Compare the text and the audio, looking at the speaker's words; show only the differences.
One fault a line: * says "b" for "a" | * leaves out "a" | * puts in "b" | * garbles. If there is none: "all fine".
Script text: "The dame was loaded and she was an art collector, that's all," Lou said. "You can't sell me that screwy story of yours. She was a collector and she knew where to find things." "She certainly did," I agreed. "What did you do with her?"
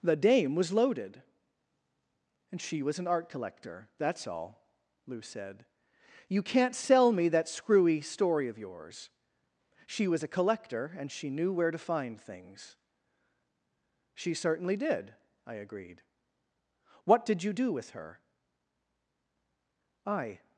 * puts in "I"